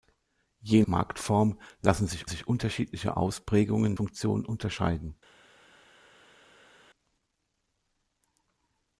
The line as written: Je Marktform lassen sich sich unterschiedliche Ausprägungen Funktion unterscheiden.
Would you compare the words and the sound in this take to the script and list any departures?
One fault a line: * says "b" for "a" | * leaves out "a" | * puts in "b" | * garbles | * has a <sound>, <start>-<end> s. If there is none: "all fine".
all fine